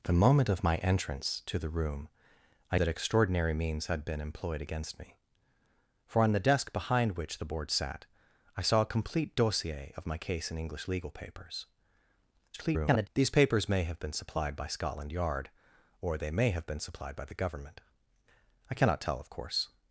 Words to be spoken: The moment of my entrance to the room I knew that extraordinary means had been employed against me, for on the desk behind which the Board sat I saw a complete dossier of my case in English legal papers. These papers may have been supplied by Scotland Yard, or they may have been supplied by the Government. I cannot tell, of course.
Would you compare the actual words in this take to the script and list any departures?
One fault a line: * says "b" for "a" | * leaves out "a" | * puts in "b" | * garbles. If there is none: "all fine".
* leaves out "knew"
* garbles